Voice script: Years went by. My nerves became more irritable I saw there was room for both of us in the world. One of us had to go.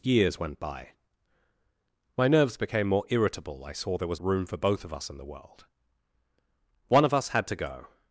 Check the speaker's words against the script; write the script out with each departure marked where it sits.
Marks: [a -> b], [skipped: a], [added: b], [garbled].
Years went by. My nerves became more irritable I saw there was room for both of us in the world. One of us had to go.